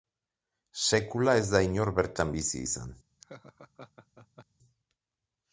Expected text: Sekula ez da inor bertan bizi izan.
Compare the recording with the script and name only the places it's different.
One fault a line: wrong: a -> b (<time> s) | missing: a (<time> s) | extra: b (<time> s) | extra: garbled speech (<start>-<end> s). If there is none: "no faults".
no faults